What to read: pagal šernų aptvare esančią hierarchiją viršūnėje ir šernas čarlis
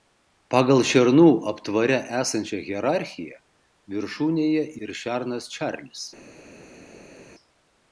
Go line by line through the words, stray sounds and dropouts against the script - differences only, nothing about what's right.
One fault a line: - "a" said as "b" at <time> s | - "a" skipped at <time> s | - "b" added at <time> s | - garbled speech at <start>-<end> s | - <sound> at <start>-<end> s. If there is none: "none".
none